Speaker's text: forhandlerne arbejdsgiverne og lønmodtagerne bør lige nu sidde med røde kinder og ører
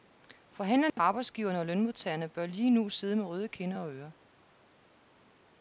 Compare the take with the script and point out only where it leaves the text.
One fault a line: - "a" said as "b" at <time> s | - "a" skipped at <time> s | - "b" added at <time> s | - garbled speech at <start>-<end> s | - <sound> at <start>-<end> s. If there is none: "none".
- dropout at 0.9-1.0 s